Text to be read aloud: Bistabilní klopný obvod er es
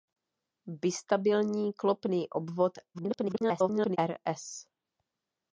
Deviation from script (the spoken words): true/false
true